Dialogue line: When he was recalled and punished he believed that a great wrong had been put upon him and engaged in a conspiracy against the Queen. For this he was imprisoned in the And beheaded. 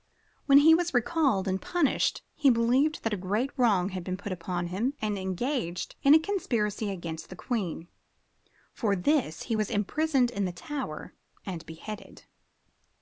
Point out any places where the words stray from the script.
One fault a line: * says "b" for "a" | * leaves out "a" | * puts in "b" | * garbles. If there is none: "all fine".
* puts in "Tower"